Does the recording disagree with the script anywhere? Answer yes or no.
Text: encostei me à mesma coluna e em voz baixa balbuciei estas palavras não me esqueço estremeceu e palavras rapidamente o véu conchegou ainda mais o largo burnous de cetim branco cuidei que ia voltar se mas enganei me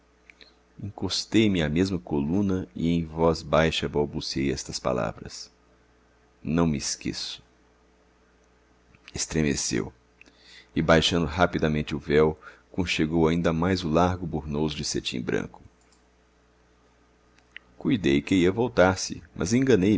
yes